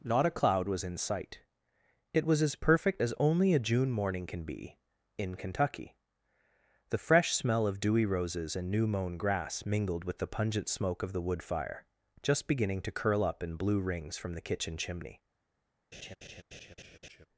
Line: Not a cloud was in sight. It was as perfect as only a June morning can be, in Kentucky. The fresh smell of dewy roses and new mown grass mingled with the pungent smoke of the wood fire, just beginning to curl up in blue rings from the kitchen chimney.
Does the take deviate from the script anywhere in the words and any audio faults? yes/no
yes